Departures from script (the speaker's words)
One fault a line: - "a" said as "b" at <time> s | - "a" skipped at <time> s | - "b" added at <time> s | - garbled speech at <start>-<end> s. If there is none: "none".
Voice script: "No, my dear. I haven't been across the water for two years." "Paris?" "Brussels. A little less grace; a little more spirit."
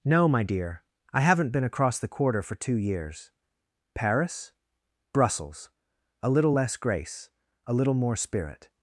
- "water" said as "quarter" at 2.1 s